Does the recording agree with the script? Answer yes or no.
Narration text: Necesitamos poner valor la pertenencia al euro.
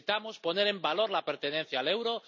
no